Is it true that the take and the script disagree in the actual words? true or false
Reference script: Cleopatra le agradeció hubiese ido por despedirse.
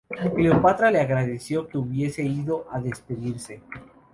true